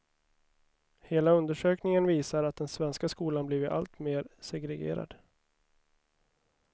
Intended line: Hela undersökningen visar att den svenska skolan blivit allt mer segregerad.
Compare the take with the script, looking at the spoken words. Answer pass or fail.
pass